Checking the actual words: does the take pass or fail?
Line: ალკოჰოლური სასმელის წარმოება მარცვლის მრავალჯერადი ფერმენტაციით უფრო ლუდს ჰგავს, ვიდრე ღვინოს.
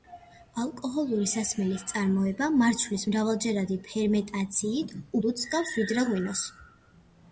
fail